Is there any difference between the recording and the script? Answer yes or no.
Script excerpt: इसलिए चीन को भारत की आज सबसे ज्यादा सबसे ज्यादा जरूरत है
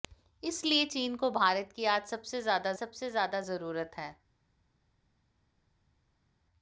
no